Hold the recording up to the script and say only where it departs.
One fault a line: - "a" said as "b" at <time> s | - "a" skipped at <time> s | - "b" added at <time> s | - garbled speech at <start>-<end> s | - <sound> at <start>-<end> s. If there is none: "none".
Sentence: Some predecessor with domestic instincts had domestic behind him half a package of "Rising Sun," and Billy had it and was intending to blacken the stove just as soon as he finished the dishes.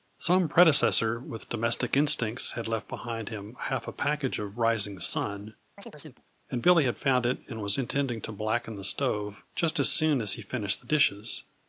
- "domestic" said as "left" at 2.7 s
- chirp at 5.8-6.2 s
- "found" added at 7.0 s